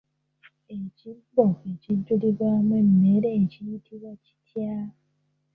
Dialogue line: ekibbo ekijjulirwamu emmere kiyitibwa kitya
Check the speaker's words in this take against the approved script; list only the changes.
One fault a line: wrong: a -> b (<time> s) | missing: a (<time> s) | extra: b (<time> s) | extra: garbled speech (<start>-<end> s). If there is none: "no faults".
no faults